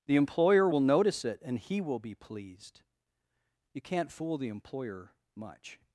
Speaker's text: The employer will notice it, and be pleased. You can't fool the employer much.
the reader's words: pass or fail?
fail